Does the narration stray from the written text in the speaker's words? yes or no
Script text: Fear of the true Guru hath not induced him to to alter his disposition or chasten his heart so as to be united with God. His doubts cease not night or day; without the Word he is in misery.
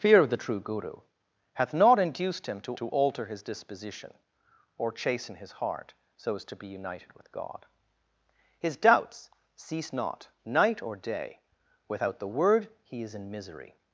no